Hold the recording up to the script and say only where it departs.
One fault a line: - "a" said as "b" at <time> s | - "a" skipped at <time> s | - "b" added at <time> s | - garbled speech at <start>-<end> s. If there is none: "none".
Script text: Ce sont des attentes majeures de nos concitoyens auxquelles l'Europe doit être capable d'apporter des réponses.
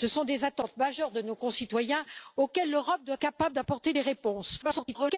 - "être" skipped at 3.2 s
- garbled speech at 4.6-5.2 s